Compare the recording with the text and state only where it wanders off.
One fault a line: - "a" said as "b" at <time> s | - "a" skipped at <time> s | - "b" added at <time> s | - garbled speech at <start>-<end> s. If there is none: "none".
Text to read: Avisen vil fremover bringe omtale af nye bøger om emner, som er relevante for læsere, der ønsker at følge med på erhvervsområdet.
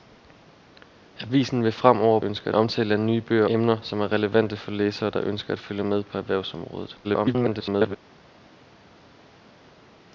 - "bringe" said as "ønsker" at 2.2 s
- "om" skipped at 3.5 s
- garbled speech at 7.0-8.0 s